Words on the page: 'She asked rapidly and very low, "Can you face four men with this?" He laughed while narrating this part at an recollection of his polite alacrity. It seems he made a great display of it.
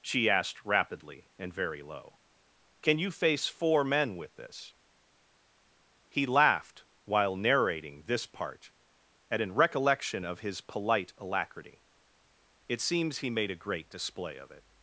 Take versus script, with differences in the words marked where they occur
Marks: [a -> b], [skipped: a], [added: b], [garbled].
'She asked rapidly and very low, "Can you face four men with this?" He laughed while narrating this part at an recollection of his polite alacrity. It seems he made a great display of it.